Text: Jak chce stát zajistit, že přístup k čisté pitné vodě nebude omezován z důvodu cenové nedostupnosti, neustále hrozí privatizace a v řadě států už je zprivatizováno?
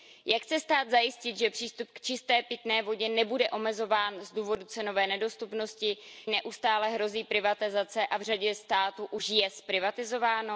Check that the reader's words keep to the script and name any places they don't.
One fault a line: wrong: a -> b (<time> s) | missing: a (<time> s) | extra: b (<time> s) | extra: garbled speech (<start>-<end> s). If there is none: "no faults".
no faults